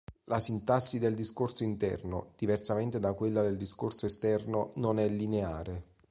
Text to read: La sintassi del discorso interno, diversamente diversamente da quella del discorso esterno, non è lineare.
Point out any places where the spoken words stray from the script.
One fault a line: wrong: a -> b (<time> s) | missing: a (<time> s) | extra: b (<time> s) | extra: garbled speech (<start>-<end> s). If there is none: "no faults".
missing: diversamente (3.0 s)